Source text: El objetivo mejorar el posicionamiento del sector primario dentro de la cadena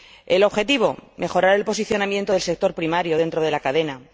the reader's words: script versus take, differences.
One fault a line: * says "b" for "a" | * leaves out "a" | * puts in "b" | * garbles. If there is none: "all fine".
all fine